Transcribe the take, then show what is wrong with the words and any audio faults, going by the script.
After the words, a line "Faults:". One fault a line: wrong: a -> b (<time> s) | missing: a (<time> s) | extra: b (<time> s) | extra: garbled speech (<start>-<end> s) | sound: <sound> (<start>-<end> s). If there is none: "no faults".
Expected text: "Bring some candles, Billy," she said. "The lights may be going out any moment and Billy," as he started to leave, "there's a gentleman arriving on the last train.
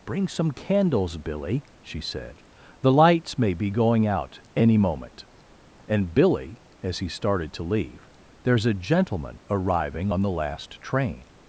"Bring some candles, Billy," she said. "The lights may be going out any moment and Billy," as he started to leave, "there's a gentleman arriving on the last train.
Faults:
no faults